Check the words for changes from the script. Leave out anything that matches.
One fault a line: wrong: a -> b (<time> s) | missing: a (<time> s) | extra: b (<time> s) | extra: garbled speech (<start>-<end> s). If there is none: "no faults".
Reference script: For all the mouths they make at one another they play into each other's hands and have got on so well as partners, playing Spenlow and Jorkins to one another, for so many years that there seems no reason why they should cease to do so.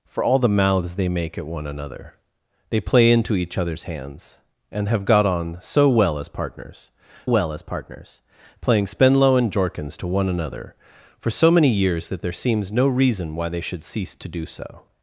extra: well as partners (7.2 s)